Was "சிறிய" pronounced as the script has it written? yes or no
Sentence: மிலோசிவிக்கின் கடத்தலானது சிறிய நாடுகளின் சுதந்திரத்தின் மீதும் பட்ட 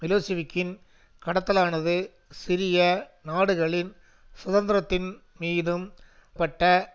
yes